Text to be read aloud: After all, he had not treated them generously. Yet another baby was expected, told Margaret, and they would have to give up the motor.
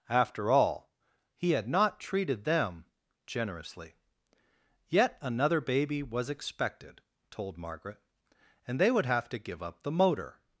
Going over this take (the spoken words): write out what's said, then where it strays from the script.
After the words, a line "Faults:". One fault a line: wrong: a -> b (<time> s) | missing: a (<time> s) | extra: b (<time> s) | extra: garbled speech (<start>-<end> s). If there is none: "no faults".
After all, he had not treated them generously. Yet another baby was expected, told Margaret, and they would have to give up the motor.
Faults:
no faults